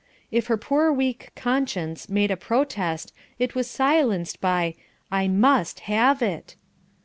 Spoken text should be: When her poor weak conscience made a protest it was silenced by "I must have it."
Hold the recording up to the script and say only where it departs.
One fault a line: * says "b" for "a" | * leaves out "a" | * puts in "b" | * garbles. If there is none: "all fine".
* says "If" for "When"